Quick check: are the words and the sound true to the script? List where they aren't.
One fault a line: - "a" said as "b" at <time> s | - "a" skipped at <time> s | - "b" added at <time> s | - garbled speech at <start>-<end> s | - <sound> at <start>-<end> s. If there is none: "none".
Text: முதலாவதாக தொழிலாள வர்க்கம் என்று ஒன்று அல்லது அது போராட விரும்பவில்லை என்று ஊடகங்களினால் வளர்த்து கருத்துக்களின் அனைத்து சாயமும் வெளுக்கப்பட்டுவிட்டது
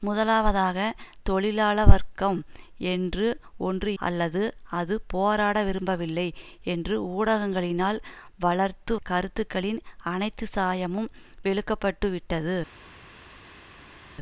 none